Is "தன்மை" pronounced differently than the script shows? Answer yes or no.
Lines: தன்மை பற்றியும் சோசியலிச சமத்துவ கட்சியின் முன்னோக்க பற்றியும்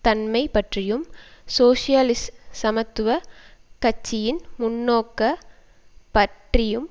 no